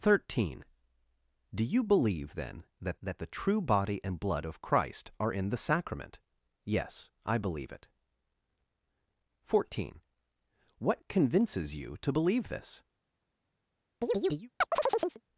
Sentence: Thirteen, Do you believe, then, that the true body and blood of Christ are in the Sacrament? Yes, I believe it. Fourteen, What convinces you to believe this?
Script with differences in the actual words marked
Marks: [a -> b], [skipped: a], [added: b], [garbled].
Thirteen, Do you believe, then, that [added: that] the true body and blood of Christ are in the Sacrament? Yes, I believe it. Fourteen, What convinces you to believe this?